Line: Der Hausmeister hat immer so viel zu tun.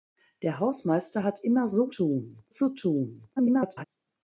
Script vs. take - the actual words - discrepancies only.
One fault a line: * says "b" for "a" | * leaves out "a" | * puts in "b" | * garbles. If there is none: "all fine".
* says "tun" for "viel"
* garbles